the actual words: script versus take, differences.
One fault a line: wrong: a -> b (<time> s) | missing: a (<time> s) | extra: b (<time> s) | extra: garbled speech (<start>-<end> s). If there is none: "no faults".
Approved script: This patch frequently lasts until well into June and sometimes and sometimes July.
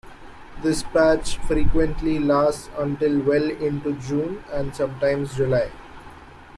missing: and sometimes (5.3 s)